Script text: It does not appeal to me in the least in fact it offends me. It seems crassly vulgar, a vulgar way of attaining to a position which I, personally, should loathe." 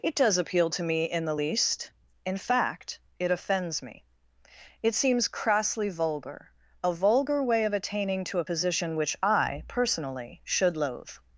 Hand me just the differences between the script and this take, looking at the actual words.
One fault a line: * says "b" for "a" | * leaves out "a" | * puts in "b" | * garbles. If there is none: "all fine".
* leaves out "not"